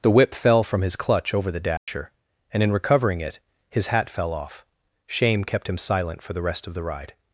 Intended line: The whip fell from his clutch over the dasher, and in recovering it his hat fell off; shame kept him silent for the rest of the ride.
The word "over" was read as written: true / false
true